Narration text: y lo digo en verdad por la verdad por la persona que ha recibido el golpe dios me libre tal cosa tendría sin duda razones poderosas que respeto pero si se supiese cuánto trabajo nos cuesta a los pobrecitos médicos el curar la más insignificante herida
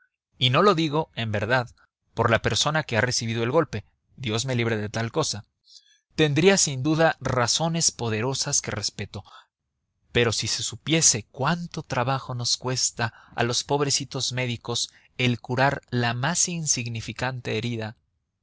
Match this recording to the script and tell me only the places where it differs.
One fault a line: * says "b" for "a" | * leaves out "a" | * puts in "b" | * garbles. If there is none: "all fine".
* puts in "no"
* leaves out "verdad por la"
* puts in "de"